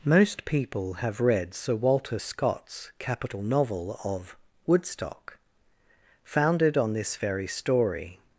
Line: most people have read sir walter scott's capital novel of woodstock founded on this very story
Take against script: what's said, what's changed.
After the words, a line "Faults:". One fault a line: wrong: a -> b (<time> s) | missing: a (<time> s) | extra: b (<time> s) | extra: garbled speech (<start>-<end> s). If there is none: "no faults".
most people have read sir walter scott's capital novel of woodstock founded on this very story
Faults:
no faults